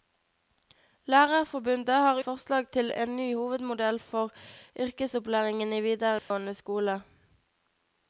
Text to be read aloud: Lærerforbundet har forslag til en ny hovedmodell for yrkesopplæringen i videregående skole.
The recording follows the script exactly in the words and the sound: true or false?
false